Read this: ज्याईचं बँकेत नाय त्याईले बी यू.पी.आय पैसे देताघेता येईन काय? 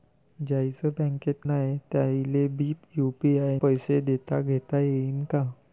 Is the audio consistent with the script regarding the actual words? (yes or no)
yes